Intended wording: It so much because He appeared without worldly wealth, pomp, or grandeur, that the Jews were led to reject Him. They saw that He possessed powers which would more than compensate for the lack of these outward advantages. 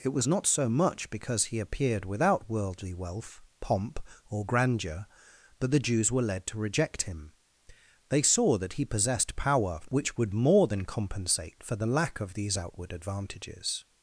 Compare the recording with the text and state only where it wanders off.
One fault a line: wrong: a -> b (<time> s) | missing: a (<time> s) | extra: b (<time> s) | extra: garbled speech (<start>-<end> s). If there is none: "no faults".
extra: was not (0.1 s)
wrong: powers -> power (9.3 s)